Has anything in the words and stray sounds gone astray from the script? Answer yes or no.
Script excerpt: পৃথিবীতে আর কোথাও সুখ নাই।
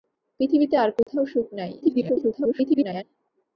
yes